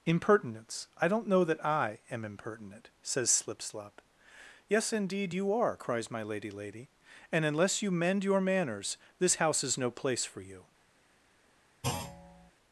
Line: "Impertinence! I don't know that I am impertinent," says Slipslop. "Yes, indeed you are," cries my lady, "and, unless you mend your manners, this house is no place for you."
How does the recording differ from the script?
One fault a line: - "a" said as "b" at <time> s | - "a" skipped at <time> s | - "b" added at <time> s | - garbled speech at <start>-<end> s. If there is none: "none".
- "lady" added at 6.5 s